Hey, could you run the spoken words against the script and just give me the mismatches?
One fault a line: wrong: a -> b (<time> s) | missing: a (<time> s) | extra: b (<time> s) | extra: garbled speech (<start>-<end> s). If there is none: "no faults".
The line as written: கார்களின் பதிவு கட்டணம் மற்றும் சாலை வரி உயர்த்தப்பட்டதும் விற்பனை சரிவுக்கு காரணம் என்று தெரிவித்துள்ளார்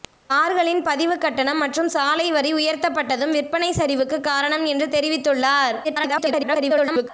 extra: garbled speech (5.8-7.1 s)